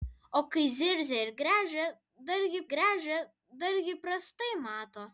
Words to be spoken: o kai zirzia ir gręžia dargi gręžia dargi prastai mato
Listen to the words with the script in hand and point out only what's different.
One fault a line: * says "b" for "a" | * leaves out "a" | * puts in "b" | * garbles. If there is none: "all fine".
all fine